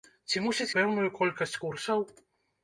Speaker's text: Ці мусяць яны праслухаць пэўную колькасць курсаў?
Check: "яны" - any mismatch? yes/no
yes